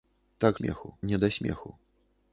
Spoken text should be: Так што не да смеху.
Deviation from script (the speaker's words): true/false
true